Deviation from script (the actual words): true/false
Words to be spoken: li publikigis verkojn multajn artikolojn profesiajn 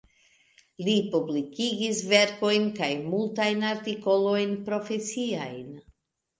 true